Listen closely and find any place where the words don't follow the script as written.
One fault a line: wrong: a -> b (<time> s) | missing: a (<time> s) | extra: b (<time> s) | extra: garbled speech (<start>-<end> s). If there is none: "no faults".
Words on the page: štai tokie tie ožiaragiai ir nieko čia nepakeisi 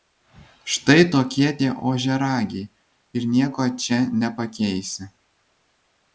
no faults